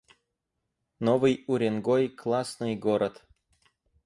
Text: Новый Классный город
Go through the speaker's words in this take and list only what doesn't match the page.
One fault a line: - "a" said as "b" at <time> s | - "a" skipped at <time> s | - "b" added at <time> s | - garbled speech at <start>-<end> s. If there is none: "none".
- "Уренгой" added at 1.5 s